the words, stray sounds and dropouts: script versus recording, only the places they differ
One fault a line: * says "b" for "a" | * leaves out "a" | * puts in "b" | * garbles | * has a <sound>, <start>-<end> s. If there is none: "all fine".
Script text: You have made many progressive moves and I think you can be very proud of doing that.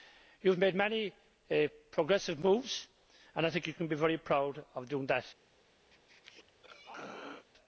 * has a throat clearing, 5.9-7.5 s